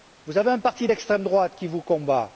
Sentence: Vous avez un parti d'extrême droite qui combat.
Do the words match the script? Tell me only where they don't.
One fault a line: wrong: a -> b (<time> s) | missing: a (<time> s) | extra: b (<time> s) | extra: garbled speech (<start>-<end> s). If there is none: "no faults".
extra: vous (1.7 s)